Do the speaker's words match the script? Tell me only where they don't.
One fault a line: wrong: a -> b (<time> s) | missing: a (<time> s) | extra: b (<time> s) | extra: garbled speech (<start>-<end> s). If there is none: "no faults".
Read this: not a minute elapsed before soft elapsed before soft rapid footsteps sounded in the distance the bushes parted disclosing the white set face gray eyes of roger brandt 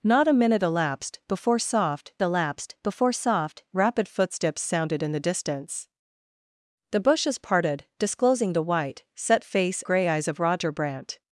no faults